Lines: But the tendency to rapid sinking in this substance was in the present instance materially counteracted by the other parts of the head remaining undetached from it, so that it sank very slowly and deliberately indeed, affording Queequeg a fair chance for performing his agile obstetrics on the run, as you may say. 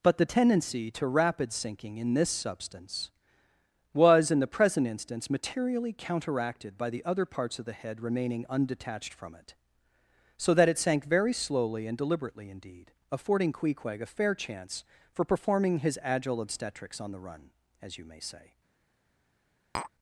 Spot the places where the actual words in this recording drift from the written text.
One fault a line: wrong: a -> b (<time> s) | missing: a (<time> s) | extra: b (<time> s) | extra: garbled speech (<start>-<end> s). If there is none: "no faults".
no faults